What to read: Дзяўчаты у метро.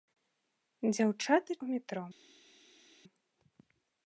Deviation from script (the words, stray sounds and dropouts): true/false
false